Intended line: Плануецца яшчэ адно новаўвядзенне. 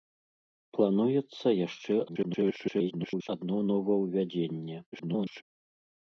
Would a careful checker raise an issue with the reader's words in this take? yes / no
yes